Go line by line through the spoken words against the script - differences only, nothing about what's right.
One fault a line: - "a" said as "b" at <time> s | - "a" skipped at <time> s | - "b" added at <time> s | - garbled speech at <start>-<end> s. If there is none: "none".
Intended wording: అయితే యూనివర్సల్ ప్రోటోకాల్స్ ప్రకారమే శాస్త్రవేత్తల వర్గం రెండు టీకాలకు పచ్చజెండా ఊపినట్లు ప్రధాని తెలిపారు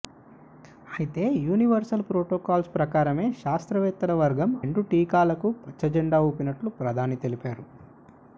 none